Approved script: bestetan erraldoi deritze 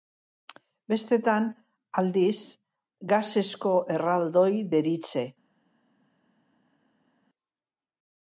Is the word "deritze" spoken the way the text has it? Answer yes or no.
yes